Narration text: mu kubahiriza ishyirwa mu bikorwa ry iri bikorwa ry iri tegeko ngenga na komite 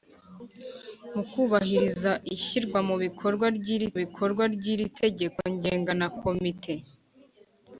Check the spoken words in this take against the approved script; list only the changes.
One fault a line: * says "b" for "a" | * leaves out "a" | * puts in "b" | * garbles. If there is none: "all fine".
all fine